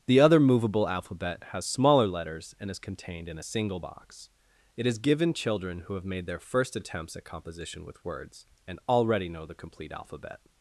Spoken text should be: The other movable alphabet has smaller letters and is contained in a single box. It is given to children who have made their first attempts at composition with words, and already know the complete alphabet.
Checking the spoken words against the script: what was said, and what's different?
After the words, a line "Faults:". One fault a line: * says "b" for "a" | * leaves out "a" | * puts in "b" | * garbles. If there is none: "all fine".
The other movable alphabet has smaller letters and is contained in a single box. It is given children who have made their first attempts at composition with words, and already know the complete alphabet.
Faults:
* leaves out "to"